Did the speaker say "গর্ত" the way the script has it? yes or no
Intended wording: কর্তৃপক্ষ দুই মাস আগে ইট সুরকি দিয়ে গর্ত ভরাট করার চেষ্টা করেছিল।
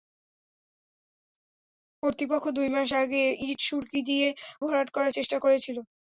no